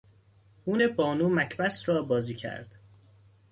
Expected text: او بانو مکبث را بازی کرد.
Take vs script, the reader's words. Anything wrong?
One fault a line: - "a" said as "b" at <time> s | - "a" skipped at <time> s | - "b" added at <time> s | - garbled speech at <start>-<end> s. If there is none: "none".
none